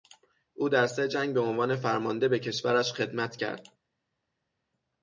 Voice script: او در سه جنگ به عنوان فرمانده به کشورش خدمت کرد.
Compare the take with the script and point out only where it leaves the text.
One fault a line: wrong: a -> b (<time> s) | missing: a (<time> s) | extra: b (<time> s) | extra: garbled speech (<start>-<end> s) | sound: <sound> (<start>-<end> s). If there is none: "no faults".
no faults